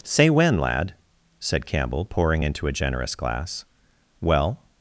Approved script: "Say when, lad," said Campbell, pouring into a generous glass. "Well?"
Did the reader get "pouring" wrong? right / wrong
right